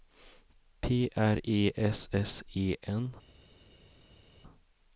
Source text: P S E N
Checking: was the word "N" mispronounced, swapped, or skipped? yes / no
no